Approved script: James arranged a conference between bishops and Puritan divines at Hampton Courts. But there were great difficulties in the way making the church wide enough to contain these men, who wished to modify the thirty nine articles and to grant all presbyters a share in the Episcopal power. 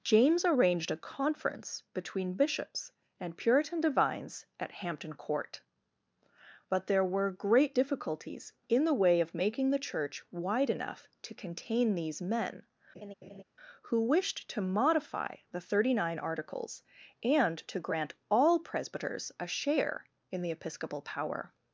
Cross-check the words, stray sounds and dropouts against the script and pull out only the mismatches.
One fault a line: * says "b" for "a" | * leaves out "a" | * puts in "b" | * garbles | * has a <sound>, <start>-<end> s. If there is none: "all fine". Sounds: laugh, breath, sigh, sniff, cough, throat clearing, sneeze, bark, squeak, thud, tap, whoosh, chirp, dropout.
* says "Court" for "Courts"
* puts in "of"
* has a laugh, 12.9-13.4 s